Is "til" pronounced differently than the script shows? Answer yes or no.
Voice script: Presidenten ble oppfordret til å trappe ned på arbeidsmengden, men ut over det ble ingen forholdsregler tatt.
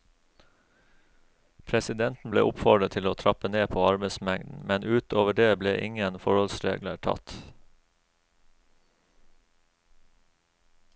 no